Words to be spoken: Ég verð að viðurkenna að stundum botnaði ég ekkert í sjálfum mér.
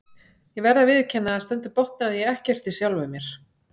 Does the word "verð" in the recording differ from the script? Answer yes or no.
no